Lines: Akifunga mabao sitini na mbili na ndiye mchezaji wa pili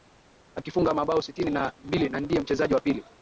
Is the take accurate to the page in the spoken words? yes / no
yes